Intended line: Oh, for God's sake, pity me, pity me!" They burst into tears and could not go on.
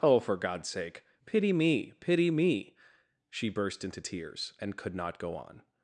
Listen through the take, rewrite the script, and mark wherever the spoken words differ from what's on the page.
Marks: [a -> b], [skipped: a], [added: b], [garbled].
Oh, for God's sake, pity me, pity me!" [They -> She] burst into tears and could not go on.